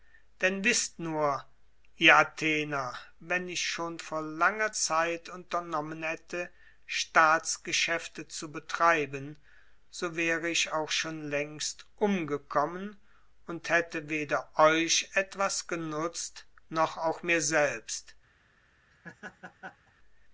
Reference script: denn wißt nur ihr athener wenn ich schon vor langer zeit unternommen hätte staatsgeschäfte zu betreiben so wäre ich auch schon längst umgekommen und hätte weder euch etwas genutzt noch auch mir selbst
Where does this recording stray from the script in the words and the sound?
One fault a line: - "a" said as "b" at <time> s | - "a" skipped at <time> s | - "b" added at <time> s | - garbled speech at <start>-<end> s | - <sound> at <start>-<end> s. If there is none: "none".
- laugh at 18.9-19.9 s